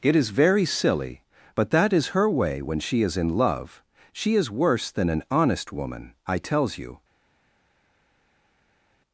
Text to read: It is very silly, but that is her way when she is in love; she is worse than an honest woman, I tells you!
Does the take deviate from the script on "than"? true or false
false